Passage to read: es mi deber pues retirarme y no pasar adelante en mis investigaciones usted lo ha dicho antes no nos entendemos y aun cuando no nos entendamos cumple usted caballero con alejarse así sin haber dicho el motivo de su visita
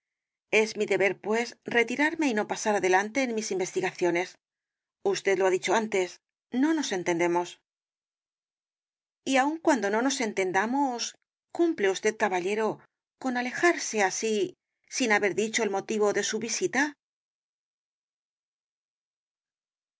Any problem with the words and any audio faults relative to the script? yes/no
no